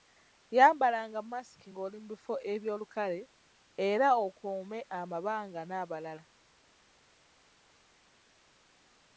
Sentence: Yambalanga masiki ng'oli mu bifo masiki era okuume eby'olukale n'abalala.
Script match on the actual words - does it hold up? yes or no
no